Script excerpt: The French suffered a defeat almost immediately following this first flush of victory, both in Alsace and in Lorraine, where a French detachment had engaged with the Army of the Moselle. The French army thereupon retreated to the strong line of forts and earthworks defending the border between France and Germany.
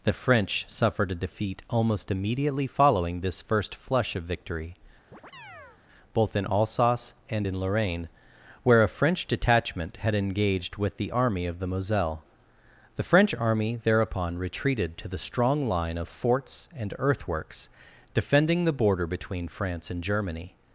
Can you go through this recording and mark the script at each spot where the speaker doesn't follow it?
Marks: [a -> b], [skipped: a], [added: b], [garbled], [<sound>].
The French suffered a defeat almost immediately following this first flush of victory, [chirp] both in Alsace and in Lorraine, where a French detachment had engaged with the Army of the Moselle. The French army thereupon retreated to the strong line of forts and earthworks defending the border between France and Germany.